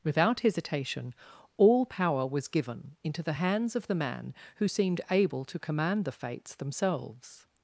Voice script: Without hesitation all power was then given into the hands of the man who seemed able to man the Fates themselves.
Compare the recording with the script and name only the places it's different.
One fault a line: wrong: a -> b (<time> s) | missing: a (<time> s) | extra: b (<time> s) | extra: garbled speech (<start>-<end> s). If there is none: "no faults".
missing: then (2.5 s)
wrong: man -> command (5.6 s)